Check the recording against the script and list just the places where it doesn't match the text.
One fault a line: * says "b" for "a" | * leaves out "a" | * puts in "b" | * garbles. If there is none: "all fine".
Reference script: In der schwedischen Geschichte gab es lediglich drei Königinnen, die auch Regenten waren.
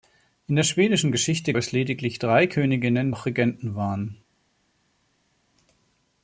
* leaves out "gab"
* leaves out "die"